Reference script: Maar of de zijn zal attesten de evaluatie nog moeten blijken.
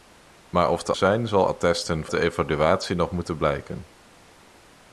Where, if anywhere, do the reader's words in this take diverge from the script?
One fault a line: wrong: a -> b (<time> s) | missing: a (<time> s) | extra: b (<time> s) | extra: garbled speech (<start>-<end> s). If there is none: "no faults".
no faults